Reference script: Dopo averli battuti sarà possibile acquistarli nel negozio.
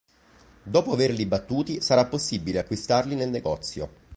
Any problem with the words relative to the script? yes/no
no